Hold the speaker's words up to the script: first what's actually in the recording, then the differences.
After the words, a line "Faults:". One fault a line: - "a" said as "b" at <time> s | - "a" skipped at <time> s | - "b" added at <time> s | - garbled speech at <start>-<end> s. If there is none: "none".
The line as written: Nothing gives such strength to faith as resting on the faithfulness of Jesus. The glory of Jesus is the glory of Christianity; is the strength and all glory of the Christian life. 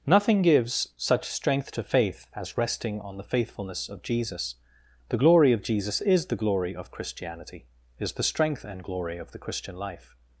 Nothing gives such strength to faith as resting on the faithfulness of Jesus. The glory of Jesus is the glory of Christianity; is the strength and glory of the Christian life.
Faults:
- "all" skipped at 8.8 s